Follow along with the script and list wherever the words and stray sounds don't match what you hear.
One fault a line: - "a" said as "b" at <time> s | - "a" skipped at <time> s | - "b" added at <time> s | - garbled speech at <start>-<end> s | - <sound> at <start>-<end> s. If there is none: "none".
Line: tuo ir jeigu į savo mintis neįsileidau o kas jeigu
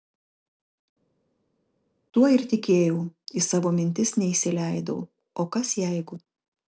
- "jeigu" said as "tikėjau" at 2.5 s